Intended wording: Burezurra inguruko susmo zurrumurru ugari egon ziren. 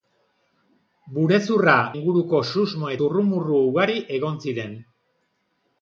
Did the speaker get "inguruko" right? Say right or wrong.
right